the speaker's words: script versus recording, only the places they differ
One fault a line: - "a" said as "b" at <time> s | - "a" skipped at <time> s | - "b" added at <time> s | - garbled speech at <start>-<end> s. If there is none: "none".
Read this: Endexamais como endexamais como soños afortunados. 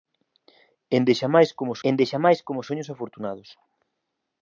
none